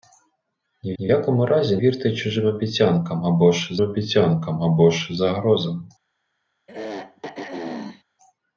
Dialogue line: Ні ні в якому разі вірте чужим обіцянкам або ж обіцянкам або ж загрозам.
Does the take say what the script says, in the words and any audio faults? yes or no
no